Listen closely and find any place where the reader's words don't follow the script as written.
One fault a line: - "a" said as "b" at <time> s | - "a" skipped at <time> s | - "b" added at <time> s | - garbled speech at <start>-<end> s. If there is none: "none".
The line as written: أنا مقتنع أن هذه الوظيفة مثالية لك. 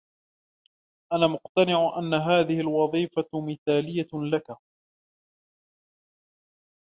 none